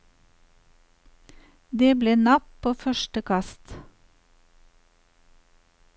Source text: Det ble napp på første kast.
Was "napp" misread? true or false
false